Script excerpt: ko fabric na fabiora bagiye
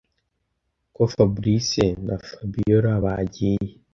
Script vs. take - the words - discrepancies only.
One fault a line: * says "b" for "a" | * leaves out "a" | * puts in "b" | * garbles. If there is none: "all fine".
all fine